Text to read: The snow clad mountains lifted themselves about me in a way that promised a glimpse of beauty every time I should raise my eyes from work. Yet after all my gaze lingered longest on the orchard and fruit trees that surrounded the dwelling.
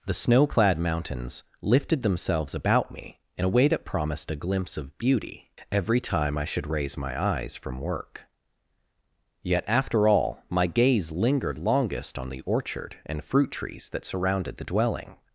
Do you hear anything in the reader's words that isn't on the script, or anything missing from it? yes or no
no